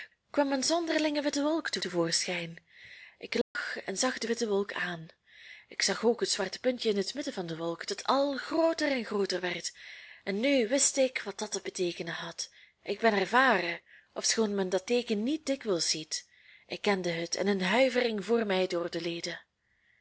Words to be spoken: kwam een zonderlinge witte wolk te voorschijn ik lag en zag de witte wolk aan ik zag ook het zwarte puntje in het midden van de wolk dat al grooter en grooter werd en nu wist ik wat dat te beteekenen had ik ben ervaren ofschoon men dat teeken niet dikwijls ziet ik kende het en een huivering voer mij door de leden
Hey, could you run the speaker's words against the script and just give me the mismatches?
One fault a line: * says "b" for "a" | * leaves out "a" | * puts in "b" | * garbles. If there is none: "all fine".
* puts in "te"